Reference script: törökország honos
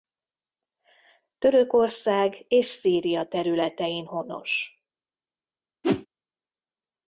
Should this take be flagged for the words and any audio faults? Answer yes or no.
yes